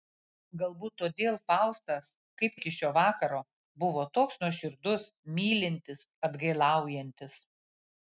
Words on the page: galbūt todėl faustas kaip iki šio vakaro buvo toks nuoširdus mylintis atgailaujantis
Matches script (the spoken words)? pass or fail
pass